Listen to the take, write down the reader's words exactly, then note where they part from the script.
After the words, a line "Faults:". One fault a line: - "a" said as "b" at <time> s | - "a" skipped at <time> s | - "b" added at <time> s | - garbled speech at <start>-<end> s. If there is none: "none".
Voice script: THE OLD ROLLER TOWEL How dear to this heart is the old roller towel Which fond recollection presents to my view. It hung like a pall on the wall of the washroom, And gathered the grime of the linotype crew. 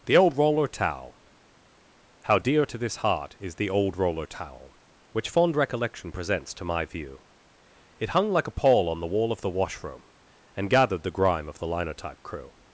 THE OLD ROLLER TOWEL How dear to this heart is the old roller towel Which fond recollection presents to my view. It hung like a pall on the wall of the washroom, And gathered the grime of the linotype crew.
Faults:
none